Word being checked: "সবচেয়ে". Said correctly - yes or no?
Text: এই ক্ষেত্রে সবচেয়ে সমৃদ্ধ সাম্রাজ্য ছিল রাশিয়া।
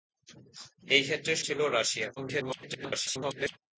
no